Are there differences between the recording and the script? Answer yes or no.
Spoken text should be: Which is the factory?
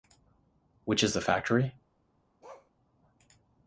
no